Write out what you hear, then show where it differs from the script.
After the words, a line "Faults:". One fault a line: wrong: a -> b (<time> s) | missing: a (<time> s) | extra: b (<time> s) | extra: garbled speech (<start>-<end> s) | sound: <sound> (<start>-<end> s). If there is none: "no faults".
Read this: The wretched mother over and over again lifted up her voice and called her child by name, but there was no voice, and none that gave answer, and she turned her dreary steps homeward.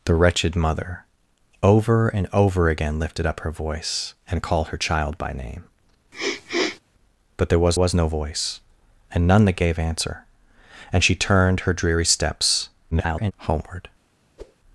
The wretched mother over and over again lifted up her voice and called her child by name, but there was was no voice, and none that gave answer, and she turned her dreary steps [garbled] homeward.
Faults:
sound: sniff (6.1-6.8 s)
extra: was (7.7 s)
extra: garbled speech (12.9-13.3 s)
sound: whoosh (14.4-14.6 s)